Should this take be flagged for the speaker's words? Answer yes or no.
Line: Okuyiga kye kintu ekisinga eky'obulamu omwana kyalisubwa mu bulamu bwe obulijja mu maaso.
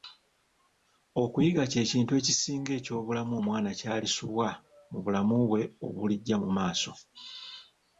no